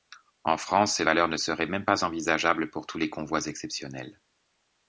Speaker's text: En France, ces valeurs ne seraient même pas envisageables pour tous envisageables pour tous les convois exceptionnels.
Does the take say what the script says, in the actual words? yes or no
no